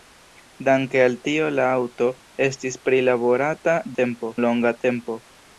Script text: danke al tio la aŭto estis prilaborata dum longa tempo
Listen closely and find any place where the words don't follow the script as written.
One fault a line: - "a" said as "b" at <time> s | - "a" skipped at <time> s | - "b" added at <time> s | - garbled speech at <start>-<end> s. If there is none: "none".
- "dum" said as "tempo" at 4.0 s